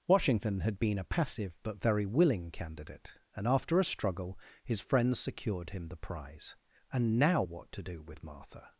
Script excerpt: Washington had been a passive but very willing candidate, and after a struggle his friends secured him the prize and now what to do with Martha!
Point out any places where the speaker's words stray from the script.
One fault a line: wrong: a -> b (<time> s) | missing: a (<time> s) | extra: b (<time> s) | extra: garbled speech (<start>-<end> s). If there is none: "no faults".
no faults